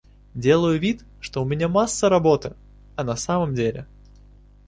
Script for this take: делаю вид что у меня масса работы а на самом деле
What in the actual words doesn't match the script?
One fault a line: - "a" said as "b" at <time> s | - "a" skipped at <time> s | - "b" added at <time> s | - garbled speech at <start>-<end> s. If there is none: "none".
none